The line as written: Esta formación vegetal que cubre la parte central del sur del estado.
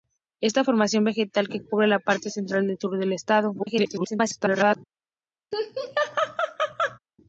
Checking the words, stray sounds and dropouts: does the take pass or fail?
fail